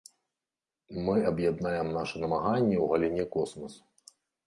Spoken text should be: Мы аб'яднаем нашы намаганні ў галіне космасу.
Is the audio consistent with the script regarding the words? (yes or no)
yes